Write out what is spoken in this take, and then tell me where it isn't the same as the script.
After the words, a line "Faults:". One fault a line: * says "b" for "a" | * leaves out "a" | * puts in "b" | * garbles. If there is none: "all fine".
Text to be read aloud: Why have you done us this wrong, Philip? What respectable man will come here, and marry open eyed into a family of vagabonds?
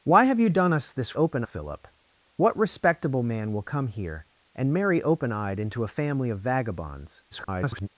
Why have you done us this open, Philip? What respectable man will come here, and marry open eyed into a family of vagabonds? [garbled]
Faults:
* says "open" for "wrong"
* garbles